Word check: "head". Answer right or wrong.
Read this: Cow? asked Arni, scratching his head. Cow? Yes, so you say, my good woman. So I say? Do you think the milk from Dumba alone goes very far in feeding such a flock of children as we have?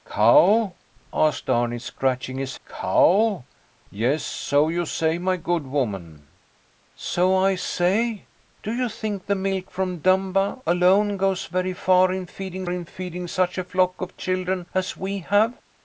wrong